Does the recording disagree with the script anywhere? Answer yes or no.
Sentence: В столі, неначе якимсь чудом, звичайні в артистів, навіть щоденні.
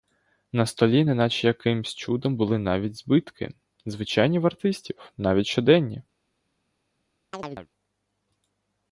yes